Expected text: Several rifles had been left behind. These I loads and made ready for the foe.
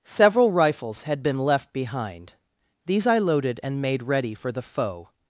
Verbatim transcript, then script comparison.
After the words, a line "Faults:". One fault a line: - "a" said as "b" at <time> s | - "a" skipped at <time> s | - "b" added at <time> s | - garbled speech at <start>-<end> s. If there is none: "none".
Several rifles had been left behind. These I loaded and made ready for the foe.
Faults:
- "loads" said as "loaded" at 3.2 s